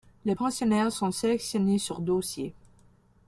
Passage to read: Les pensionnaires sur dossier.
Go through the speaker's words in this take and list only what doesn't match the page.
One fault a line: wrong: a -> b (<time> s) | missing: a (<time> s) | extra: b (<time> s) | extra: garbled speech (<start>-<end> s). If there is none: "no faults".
extra: sont sélectionnés (0.9 s)